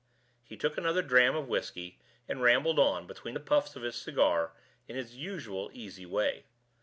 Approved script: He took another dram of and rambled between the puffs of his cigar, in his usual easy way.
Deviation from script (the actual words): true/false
true